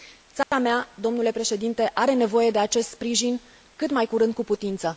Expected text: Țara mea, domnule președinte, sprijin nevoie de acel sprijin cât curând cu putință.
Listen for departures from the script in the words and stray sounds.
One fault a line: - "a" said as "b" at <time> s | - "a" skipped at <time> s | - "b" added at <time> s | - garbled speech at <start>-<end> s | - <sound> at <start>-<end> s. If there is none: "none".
- dropout at 0.4-0.5 s
- "sprijin" said as "are" at 1.9 s
- "acel" said as "acest" at 2.6 s
- "mai" added at 3.9 s